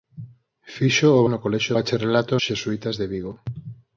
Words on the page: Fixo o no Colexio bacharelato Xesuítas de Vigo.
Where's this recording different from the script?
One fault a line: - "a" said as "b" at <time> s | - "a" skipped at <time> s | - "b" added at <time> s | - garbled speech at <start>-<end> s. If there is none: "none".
none